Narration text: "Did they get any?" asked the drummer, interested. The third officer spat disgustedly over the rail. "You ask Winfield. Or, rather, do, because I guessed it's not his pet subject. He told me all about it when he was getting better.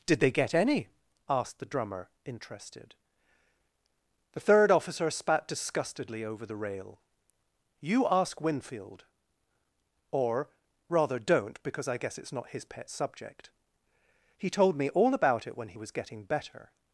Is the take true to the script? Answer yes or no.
no